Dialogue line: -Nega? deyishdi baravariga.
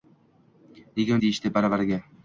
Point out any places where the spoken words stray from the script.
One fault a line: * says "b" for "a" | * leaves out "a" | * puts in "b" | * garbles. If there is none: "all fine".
all fine